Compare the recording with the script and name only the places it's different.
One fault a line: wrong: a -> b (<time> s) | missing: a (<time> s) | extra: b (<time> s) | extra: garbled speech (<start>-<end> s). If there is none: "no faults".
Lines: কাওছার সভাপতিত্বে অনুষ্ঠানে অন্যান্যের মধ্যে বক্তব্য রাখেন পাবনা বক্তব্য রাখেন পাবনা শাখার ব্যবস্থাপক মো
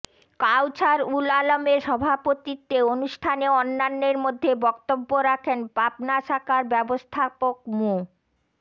extra: উল আলমের (1.1 s)
missing: বক্তব্য রাখেন পাবনা (6.2 s)